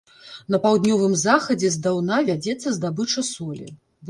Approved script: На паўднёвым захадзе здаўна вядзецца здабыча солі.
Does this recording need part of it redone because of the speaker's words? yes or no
no